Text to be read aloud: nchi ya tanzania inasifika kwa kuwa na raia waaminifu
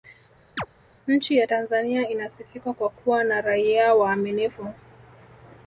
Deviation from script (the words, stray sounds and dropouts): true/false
true